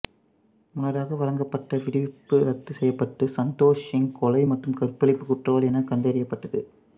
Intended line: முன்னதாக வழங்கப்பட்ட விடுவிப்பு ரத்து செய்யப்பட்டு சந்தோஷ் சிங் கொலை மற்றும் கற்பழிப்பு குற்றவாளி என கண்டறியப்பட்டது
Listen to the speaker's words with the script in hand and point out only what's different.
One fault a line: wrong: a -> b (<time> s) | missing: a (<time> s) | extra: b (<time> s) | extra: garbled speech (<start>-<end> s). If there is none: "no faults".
no faults